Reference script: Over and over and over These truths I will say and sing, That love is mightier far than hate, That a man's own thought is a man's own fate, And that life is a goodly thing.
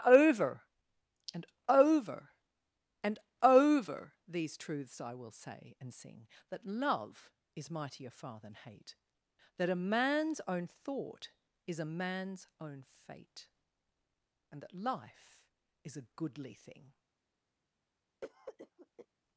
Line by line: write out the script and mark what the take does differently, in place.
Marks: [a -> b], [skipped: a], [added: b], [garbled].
Over and over and over These truths I will say and sing, That love is mightier far than hate, That a man's own thought is a man's own fate, And that life is a goodly thing.